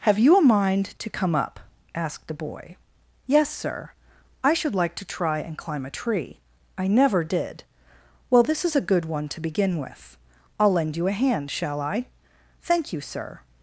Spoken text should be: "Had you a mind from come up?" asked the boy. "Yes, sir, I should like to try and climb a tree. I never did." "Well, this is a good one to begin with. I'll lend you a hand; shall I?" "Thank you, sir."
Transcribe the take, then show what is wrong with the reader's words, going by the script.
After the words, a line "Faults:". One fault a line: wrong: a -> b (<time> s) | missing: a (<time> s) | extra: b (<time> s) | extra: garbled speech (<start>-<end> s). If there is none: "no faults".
"Have you a mind to come up?" asked the boy. "Yes, sir, I should like to try and climb a tree. I never did." "Well, this is a good one to begin with. I'll lend you a hand; shall I?" "Thank you, sir."
Faults:
wrong: Had -> Have (0.0 s)
wrong: from -> to (1.0 s)